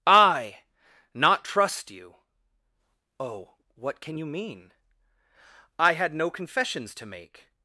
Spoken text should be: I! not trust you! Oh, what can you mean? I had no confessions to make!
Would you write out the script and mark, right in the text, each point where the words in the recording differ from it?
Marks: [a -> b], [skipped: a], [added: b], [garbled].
I! not trust you! Oh, what can you mean? I had no confessions to make!